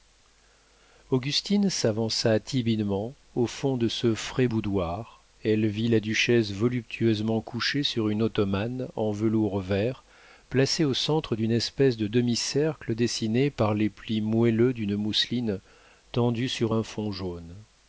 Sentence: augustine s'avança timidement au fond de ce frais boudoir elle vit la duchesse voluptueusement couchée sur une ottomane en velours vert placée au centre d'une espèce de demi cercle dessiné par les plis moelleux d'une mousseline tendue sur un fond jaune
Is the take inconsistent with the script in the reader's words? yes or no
no